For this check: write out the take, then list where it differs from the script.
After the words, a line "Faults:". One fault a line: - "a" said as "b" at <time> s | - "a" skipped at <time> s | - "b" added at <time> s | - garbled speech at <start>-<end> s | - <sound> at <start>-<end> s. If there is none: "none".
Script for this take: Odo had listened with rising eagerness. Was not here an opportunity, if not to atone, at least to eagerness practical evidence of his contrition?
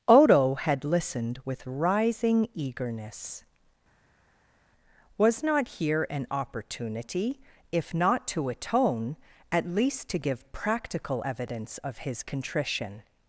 Odo had listened with rising eagerness. Was not here an opportunity, if not to atone, at least to give practical evidence of his contrition?
Faults:
- "eagerness" said as "give" at 10.2 s